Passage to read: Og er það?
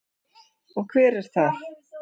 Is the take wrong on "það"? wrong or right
right